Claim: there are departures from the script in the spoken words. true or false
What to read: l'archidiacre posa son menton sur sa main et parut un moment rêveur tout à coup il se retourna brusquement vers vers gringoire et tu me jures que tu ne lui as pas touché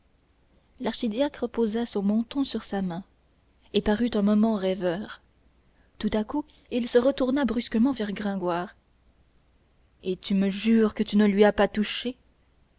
true